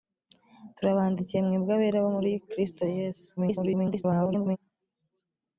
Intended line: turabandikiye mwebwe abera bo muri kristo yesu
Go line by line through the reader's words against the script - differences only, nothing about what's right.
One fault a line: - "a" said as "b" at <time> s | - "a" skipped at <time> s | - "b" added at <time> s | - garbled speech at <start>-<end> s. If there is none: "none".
- garbled speech at 3.4-4.6 s